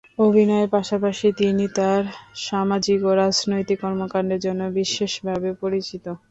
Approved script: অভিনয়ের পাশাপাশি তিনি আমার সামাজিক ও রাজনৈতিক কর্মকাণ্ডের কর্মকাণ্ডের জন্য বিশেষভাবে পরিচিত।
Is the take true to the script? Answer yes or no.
no